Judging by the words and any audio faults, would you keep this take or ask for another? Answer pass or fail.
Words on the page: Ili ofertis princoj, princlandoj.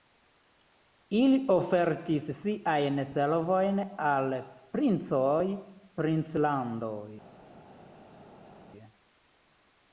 fail